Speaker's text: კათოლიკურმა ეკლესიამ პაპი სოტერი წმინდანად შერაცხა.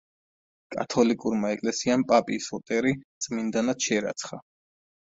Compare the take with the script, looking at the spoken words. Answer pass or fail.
pass